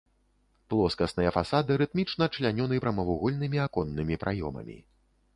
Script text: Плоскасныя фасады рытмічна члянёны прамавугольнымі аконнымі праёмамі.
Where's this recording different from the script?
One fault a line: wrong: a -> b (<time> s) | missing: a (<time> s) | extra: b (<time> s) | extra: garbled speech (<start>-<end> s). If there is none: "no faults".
no faults